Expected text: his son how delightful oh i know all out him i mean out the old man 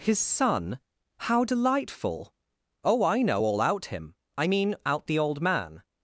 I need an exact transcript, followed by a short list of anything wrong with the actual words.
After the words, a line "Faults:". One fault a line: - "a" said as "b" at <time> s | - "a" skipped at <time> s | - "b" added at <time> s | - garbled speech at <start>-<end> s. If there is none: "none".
his son how delightful oh i know all out him i mean out the old man
Faults:
none